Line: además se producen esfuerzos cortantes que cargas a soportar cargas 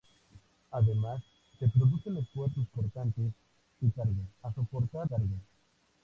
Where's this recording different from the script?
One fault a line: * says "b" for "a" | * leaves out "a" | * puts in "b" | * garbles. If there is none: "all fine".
all fine